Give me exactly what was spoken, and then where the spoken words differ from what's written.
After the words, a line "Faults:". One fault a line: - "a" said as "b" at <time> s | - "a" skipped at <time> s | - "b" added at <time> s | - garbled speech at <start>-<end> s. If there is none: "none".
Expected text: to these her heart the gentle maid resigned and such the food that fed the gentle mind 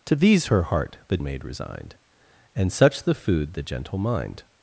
to these her heart the maid resigned and such the food the gentle mind
Faults:
- "gentle" skipped at 1.2 s
- "that fed" skipped at 3.5 s